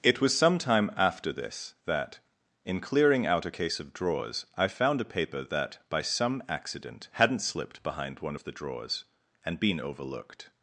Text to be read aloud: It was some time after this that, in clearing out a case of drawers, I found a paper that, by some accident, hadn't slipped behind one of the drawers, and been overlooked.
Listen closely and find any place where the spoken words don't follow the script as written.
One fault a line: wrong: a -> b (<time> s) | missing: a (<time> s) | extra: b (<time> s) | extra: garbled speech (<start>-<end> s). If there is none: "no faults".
no faults